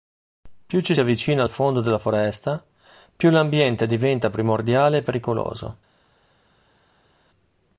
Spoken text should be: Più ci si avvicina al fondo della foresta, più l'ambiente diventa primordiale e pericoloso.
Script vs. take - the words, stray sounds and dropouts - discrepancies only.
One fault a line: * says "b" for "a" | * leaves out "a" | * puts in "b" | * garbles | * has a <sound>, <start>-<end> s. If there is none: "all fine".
* leaves out "si"